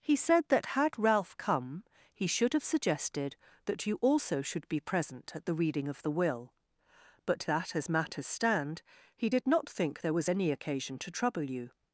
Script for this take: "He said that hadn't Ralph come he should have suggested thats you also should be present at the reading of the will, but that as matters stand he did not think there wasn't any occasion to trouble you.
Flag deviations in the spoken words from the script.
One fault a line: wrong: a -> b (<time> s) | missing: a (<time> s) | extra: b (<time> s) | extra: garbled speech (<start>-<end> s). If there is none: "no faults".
wrong: hadn't -> had (0.7 s)
wrong: thats -> that (3.6 s)
wrong: wasn't -> was (10.1 s)